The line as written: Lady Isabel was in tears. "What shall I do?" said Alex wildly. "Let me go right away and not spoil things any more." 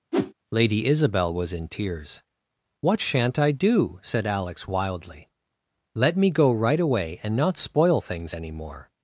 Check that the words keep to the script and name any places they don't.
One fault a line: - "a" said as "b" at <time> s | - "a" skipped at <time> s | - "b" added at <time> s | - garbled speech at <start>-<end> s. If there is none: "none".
- "shall" said as "shan't" at 3.0 s